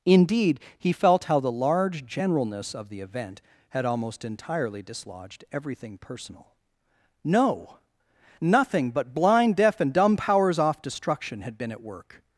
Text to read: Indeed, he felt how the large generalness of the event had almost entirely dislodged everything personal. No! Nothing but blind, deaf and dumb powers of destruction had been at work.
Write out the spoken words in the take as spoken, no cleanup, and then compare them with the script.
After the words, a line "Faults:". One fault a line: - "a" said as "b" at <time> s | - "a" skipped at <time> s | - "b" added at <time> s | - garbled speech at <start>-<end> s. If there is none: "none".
Indeed, he felt how the large generalness of the event had almost entirely dislodged everything personal. No! Nothing but blind, deaf and dumb powers off destruction had been at work.
Faults:
- "of" said as "off" at 10.6 s